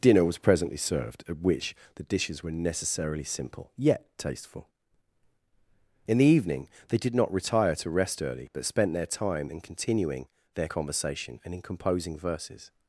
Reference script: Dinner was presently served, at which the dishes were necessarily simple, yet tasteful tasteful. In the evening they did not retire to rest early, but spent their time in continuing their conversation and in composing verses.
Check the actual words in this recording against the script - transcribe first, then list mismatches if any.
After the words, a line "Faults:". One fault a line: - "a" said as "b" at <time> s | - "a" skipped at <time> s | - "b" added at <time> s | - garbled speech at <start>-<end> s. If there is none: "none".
Dinner was presently served, at which the dishes were necessarily simple, yet tasteful. In the evening they did not retire to rest early, but spent their time in continuing their conversation and in composing verses.
Faults:
- "tasteful" skipped at 4.7 s